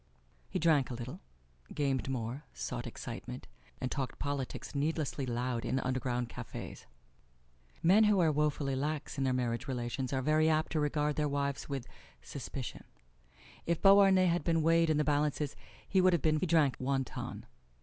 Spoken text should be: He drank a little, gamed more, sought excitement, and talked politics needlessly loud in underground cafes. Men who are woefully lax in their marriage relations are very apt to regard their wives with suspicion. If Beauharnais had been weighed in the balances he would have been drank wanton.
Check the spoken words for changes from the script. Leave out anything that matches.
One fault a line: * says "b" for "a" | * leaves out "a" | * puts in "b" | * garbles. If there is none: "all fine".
all fine